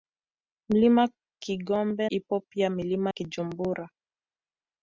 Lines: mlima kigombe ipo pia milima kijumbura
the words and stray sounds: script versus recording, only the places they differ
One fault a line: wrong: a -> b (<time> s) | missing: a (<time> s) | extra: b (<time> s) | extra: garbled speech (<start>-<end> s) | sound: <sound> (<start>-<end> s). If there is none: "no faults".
no faults